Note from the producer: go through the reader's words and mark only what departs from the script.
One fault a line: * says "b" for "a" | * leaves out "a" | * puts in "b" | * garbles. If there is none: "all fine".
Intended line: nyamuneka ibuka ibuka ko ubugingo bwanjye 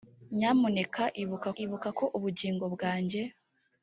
all fine